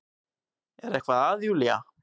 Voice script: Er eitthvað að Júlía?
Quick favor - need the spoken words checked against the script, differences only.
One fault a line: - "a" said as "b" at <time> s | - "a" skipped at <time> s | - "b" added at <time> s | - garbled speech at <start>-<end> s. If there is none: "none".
none